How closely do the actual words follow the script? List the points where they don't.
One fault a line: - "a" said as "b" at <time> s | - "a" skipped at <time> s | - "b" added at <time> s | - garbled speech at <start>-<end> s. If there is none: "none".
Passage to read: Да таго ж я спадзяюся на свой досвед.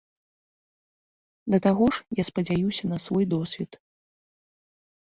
none